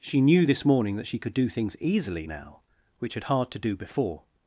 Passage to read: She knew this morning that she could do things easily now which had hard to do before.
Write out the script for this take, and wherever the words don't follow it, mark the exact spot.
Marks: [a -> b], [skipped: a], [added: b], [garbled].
She knew this morning that she could do things easily now which had hard to do before.